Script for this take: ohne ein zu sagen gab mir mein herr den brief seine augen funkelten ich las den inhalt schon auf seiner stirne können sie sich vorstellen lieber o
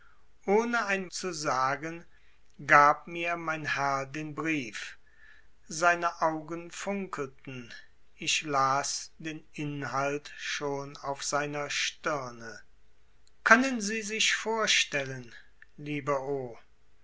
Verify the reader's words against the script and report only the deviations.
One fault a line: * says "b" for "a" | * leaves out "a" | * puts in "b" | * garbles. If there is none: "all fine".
all fine